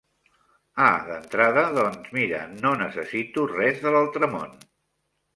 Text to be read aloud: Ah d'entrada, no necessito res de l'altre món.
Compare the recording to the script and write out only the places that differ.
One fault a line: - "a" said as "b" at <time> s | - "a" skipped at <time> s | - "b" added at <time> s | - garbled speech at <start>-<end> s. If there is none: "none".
- "doncs mira" added at 1.8 s